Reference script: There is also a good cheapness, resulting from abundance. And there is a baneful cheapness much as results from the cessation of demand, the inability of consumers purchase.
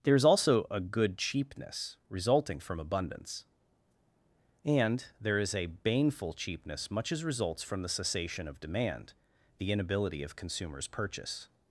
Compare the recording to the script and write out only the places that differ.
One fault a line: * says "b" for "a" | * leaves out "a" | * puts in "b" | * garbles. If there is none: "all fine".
all fine